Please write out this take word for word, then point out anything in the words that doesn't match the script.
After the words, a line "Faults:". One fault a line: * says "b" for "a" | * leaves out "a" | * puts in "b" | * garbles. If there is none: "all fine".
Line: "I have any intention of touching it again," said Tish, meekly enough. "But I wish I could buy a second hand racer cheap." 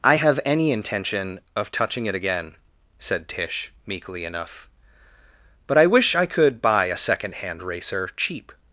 "I have any intention of touching it again," said Tish, meekly enough. "But I wish I could buy a second hand racer cheap."
Faults:
all fine